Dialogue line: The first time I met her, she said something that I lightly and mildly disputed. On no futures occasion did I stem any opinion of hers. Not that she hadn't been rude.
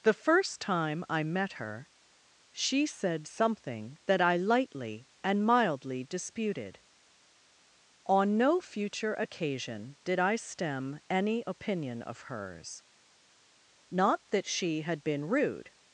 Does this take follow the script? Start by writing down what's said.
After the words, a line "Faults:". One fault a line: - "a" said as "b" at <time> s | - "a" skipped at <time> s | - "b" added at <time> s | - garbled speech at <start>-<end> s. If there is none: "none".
The first time I met her, she said something that I lightly and mildly disputed. On no future occasion did I stem any opinion of hers. Not that she had been rude.
Faults:
- "futures" said as "future" at 8.6 s
- "hadn't" said as "had" at 14.8 s